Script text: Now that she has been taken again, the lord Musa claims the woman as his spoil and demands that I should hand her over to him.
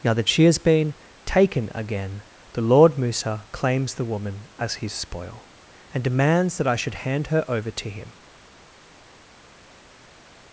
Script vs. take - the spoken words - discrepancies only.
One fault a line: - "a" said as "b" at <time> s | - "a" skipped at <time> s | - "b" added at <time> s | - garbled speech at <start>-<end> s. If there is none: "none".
none